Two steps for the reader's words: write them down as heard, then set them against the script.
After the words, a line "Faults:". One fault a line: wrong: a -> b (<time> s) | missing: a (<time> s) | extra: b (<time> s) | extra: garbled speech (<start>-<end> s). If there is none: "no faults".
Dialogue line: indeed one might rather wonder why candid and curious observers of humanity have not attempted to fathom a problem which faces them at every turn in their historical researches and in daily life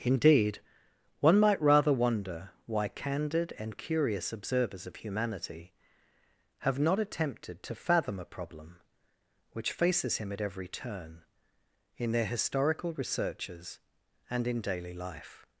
indeed one might rather wonder why candid and curious observers of humanity have not attempted to fathom a problem which faces him at every turn in their historical researches and in daily life
Faults:
wrong: them -> him (10.2 s)